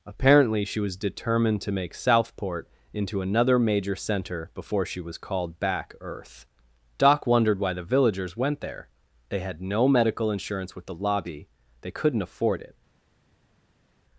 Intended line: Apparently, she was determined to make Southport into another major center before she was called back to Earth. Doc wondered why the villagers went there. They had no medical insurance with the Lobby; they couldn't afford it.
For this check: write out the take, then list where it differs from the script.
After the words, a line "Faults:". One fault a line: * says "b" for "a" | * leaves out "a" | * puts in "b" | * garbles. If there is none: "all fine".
Apparently, she was determined to make Southport into another major center before she was called back Earth. Doc wondered why the villagers went there. They had no medical insurance with the Lobby; they couldn't afford it.
Faults:
* leaves out "to"